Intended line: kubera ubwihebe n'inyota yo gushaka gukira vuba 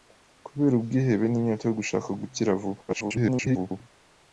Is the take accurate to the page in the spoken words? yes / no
no